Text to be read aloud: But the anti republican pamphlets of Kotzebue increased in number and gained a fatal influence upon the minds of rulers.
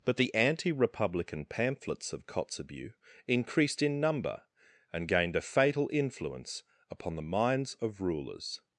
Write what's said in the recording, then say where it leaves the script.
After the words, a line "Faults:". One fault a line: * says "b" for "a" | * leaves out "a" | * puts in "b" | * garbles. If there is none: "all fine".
But the anti republican pamphlets of Kotzebue increased in number and gained a fatal influence upon the minds of rulers.
Faults:
all fine